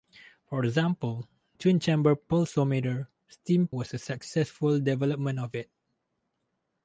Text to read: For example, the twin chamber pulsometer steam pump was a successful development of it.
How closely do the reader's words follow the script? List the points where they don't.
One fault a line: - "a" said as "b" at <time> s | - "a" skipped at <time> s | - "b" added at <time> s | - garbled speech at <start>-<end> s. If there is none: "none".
- "the" skipped at 1.3 s
- "pump" skipped at 3.7 s